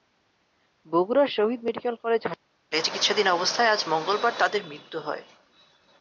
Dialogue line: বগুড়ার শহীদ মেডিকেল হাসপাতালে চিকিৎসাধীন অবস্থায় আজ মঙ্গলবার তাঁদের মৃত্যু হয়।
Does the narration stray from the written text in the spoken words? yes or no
yes